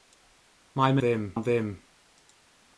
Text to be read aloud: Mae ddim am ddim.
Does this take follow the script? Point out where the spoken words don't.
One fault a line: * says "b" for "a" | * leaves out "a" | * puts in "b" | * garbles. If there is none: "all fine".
all fine